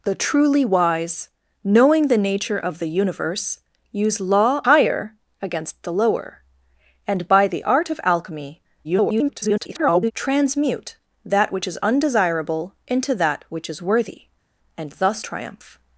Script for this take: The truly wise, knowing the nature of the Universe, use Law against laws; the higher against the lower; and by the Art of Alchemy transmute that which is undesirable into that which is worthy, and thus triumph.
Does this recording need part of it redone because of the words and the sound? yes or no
yes